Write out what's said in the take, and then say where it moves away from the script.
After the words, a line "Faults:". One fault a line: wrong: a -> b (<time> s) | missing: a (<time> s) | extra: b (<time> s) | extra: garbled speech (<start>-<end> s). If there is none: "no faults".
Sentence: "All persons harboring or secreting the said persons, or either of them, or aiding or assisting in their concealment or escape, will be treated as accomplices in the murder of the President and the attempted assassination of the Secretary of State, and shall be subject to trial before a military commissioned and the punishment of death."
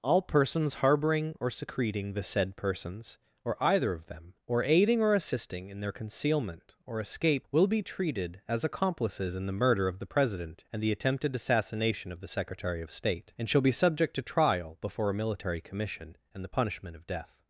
"All persons harboring or secreting the said persons, or either of them, or aiding or assisting in their concealment or escape, will be treated as accomplices in the murder of the President and the attempted assassination of the Secretary of State, and shall be subject to trial before a military commission and the punishment of death."
Faults:
wrong: commissioned -> commission (15.6 s)